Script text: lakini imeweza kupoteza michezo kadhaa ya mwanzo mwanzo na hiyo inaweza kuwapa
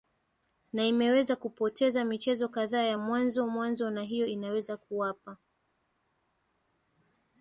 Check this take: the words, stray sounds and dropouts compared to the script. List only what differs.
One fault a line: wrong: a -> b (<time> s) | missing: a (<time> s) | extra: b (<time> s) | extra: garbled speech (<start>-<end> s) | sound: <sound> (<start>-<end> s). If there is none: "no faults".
wrong: lakini -> na (0.7 s)